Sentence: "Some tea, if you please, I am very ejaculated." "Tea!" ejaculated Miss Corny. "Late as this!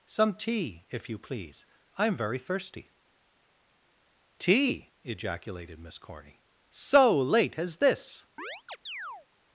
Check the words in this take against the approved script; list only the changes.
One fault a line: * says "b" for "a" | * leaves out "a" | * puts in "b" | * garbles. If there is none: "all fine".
* says "thirsty" for "ejaculated"
* puts in "So"